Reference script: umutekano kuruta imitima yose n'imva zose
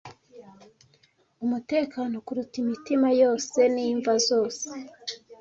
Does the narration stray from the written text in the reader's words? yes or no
no